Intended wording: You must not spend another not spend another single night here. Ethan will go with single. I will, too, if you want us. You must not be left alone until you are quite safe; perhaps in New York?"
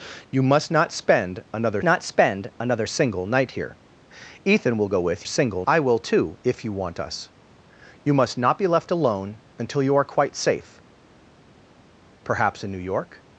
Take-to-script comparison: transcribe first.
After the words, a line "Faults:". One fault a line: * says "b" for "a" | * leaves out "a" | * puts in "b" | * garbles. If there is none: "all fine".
You must not spend another not spend another single night here. Ethan will go with single. I will, too, if you want us. You must not be left alone until you are quite safe; perhaps in New York?"
Faults:
all fine